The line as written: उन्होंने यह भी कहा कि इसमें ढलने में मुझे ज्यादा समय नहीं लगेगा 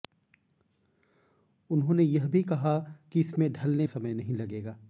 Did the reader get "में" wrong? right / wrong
wrong